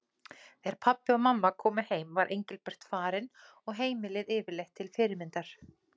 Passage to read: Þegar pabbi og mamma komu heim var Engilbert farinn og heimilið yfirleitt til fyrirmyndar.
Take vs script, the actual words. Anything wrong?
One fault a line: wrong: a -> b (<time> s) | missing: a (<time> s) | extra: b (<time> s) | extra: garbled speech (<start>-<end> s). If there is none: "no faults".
no faults